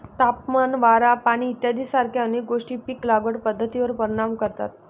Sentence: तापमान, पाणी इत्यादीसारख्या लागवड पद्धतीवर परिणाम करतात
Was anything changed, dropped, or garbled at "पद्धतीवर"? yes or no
no